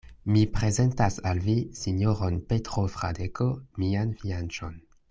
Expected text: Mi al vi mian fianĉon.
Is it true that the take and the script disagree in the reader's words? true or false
true